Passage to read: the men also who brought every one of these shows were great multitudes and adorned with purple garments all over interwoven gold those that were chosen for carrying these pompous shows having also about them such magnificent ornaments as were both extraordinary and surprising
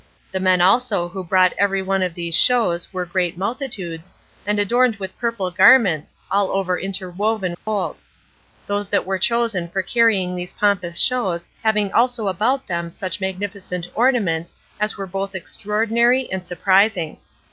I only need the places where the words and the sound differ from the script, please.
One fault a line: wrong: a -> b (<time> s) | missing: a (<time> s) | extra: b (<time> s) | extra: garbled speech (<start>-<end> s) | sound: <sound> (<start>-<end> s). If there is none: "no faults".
sound: dropout (7.6-7.7 s)